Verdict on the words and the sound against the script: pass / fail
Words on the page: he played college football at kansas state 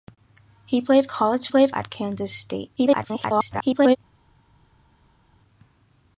fail